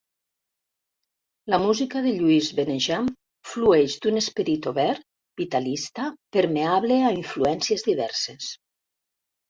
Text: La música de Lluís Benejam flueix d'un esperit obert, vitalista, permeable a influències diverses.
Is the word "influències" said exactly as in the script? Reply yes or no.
yes